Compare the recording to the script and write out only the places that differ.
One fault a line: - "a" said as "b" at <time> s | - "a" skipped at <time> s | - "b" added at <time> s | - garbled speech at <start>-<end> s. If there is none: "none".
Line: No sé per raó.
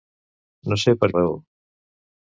none